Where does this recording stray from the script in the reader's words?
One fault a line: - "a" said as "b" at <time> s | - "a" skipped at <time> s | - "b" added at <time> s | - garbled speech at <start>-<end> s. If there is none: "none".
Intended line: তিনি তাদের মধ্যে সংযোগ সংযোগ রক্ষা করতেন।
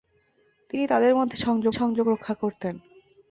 none